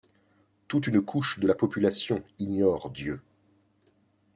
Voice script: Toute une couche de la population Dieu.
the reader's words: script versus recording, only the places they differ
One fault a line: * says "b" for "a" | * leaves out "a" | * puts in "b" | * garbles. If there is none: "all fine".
* puts in "ignore"